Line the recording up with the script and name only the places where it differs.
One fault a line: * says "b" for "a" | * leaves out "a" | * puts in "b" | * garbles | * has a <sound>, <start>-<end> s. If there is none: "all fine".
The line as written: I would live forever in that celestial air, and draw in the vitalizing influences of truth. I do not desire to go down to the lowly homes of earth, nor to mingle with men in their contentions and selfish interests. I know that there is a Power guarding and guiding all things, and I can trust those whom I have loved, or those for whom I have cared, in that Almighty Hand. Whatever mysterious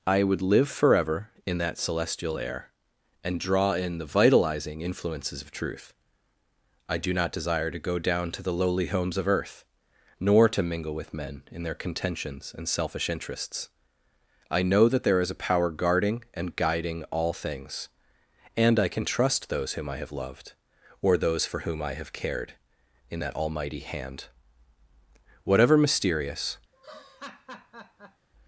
* has a laugh, 26.7-28.3 s